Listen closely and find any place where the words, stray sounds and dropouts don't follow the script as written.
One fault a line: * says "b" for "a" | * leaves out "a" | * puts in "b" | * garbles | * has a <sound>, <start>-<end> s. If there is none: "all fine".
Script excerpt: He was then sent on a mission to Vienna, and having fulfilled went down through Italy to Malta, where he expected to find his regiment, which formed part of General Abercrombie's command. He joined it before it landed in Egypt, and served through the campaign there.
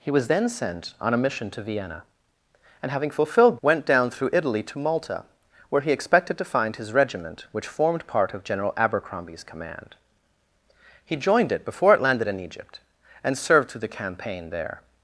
all fine